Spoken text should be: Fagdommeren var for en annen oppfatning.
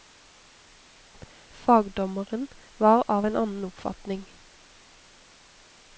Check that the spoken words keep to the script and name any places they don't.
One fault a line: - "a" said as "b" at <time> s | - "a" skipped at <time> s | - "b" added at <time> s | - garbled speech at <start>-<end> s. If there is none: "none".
- "for" said as "av" at 3.1 s